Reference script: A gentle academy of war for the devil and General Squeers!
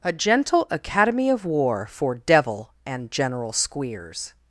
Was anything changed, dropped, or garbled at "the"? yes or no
yes